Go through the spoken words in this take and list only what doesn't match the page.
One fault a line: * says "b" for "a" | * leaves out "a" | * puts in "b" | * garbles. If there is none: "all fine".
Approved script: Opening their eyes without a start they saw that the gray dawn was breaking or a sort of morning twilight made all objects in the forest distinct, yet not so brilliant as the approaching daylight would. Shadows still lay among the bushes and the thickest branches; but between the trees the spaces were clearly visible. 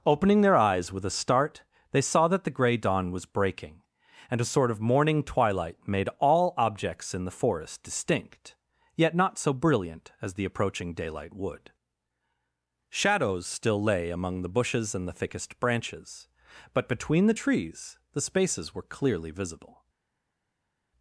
* says "with" for "without"
* says "and" for "or"